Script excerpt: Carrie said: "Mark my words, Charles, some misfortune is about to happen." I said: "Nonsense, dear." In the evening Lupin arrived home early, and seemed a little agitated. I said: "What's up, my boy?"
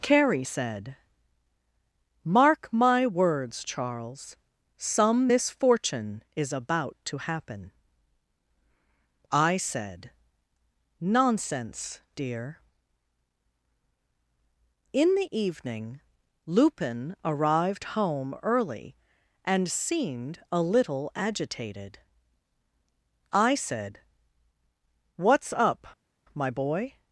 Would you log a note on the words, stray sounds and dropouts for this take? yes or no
no